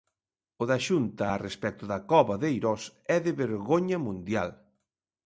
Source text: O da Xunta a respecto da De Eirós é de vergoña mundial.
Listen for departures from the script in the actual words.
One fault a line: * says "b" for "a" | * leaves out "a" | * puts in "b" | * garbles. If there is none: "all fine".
* puts in "Cova"